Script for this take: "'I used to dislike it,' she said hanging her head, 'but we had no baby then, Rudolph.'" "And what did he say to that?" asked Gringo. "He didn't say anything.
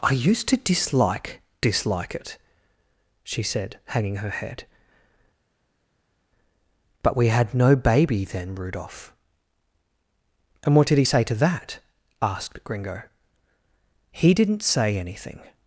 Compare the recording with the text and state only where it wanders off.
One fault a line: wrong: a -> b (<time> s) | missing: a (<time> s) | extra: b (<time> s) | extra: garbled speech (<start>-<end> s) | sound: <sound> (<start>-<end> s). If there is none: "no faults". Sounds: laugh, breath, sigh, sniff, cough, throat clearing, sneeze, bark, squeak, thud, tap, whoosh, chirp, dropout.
extra: dislike (1.6 s)